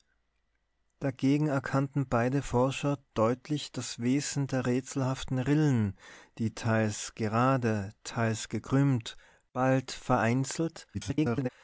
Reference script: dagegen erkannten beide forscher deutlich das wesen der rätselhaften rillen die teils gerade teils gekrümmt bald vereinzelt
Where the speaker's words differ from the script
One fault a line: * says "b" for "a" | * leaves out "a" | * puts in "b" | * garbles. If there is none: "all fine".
* garbles